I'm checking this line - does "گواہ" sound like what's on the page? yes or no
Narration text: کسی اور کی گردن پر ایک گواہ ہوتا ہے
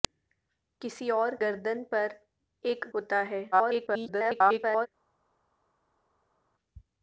no